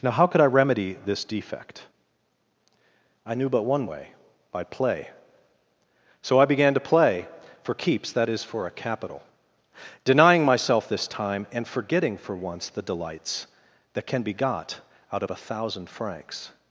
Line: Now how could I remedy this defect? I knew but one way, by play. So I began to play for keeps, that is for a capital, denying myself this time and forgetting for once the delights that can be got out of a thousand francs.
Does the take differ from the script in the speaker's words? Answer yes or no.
no